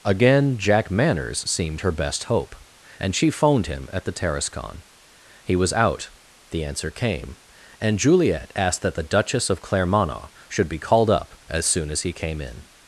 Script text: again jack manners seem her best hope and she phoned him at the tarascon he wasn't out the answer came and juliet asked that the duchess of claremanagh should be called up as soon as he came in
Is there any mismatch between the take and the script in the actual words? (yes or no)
yes